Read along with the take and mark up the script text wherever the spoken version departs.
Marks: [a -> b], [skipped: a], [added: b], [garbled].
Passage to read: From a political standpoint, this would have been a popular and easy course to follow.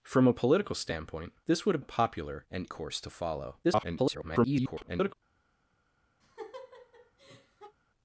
From a political standpoint, this would have [skipped: been] a popular and [skipped: easy] course to follow. [garbled]